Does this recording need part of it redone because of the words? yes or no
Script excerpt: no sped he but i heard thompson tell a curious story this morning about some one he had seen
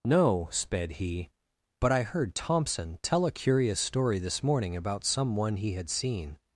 no